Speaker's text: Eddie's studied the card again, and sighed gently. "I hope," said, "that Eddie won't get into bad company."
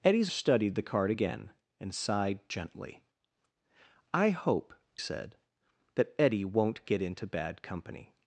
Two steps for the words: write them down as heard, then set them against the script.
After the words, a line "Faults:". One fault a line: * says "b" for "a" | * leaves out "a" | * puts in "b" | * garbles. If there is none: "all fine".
Eddie's studied the card again, and sighed gently. "I hope," said, "that Eddie won't get into bad company."
Faults:
all fine